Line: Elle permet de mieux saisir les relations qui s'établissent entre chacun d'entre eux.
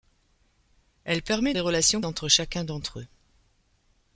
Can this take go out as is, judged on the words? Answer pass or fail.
fail